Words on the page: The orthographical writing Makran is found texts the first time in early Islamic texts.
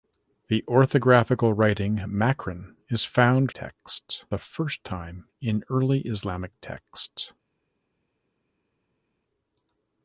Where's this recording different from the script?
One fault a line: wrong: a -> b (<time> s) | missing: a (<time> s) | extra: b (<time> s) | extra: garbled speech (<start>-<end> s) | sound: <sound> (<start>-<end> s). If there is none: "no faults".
no faults